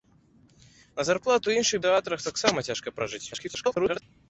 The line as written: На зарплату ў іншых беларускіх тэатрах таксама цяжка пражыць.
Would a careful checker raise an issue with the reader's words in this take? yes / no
yes